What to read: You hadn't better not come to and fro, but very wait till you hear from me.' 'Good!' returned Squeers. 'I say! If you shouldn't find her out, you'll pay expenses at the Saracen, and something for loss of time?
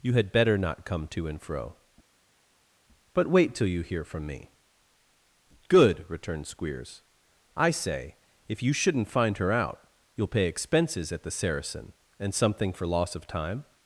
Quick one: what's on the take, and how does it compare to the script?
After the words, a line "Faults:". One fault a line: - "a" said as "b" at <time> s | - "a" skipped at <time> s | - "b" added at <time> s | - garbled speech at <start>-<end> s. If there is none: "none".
You had better not come to and fro, but wait till you hear from me.' 'Good!' returned Squeers. 'I say! If you shouldn't find her out, you'll pay expenses at the Saracen, and something for loss of time?
Faults:
- "hadn't" said as "had" at 0.1 s
- "very" skipped at 3.3 s